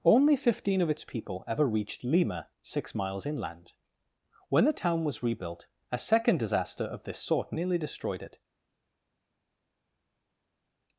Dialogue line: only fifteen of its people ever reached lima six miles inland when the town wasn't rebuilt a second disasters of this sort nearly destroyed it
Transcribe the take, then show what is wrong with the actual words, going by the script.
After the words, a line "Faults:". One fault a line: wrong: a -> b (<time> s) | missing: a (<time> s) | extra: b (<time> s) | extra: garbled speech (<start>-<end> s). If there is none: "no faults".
only fifteen of its people ever reached lima six miles inland when the town was rebuilt a second disaster of this sort nearly destroyed it
Faults:
wrong: wasn't -> was (5.0 s)
wrong: disasters -> disaster (6.4 s)